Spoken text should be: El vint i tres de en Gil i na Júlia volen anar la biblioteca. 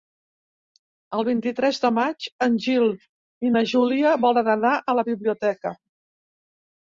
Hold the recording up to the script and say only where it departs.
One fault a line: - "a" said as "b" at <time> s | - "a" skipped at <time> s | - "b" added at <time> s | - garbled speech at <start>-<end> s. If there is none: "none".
- "maig" added at 2.0 s
- "a" added at 4.8 s